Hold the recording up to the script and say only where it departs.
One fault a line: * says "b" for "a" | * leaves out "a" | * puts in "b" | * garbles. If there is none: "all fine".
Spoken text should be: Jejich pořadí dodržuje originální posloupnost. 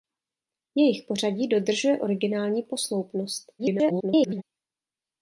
* garbles